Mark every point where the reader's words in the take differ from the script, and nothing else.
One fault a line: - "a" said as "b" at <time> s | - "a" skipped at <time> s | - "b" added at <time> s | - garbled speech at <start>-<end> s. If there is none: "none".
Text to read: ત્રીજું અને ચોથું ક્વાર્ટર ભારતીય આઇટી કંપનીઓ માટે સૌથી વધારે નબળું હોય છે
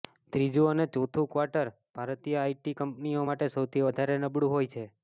none